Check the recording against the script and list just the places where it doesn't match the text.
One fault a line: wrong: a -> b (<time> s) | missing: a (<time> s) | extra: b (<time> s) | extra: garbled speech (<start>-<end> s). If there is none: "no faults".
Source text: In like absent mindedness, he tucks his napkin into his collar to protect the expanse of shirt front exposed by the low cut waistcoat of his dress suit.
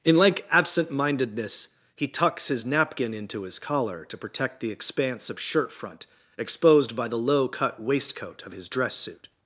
no faults